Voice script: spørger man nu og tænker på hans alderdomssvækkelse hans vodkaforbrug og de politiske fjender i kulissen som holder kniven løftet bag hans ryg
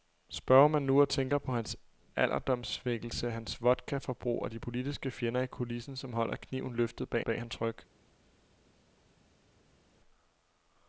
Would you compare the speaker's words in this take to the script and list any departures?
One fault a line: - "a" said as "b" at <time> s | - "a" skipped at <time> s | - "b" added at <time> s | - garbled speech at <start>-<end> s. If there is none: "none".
- "bag" added at 7.2 s